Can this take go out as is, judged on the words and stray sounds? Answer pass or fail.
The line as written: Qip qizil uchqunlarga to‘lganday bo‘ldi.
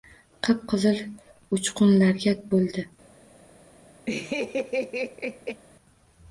fail